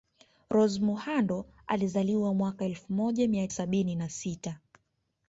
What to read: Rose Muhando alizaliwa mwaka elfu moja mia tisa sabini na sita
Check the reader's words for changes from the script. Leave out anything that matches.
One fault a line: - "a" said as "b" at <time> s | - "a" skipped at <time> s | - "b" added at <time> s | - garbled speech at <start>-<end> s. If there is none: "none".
- "tisa" skipped at 3.5 s